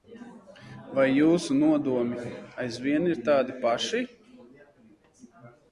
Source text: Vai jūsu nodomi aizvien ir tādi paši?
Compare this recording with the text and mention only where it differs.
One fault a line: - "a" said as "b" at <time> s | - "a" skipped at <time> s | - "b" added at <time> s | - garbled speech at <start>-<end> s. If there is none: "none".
none